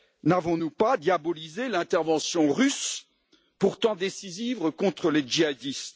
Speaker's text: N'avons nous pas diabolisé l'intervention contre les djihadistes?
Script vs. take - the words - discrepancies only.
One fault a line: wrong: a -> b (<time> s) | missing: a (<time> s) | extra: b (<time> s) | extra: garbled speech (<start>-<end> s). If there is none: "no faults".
extra: russe pourtant décisive (2.5 s)